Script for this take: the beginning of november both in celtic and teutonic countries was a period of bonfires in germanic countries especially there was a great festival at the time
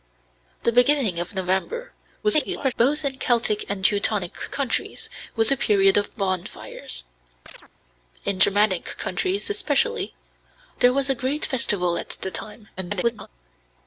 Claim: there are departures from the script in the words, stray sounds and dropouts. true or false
true